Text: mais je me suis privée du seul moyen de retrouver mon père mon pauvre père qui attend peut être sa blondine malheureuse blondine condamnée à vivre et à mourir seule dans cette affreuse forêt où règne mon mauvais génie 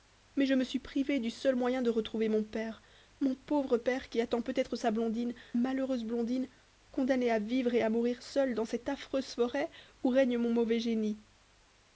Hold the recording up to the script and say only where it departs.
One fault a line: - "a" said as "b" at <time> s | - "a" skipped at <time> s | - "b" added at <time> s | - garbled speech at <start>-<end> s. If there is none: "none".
none